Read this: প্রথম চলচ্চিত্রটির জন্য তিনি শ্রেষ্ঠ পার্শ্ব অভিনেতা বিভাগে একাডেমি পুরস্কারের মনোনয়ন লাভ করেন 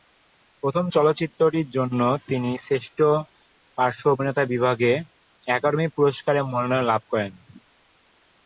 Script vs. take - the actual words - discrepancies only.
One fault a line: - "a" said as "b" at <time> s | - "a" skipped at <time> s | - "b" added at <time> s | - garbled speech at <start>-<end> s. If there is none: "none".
none